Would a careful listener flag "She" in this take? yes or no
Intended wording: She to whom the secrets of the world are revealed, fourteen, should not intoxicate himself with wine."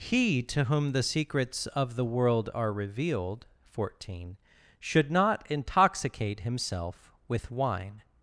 yes